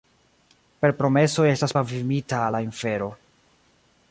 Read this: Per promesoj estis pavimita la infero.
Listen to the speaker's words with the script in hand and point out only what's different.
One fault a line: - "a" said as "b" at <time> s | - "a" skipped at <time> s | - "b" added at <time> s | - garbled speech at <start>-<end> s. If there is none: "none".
- "estis" said as "estas" at 1.5 s